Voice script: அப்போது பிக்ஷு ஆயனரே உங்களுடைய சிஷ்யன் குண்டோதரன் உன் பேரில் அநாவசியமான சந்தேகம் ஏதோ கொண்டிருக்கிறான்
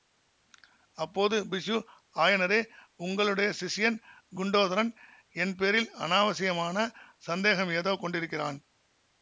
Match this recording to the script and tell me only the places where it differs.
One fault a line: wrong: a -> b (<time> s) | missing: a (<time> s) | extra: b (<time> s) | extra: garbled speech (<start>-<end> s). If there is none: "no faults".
wrong: உன் -> என் (5.3 s)